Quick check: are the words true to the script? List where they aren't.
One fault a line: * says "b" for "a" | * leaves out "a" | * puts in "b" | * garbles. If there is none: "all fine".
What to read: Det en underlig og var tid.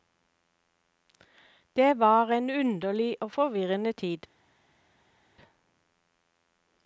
* puts in "var"
* says "forvirrende" for "var"